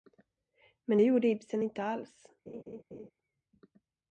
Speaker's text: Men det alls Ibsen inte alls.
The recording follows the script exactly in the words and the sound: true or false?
false